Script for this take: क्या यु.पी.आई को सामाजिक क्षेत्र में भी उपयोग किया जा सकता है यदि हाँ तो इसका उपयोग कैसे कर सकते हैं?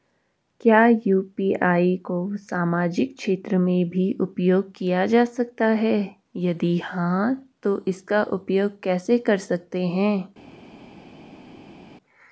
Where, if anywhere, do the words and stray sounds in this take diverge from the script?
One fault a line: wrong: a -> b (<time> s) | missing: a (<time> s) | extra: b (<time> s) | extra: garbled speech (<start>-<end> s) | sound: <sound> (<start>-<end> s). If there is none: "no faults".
no faults